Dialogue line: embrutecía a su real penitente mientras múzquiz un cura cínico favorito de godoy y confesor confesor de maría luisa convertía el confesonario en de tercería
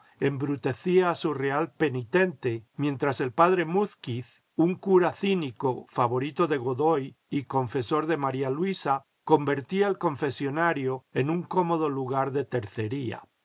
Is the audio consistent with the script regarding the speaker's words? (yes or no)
no